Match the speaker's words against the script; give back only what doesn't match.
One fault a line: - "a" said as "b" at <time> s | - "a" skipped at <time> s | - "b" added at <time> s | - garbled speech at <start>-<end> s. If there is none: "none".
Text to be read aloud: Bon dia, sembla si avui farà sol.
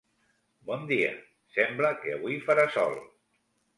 - "si" said as "que" at 2.0 s